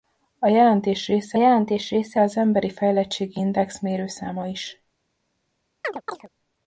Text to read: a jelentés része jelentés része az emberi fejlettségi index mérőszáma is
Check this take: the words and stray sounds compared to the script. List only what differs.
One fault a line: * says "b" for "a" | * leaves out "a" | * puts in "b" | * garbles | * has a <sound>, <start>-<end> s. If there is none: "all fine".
* has a chirp, 5.8-6.3 s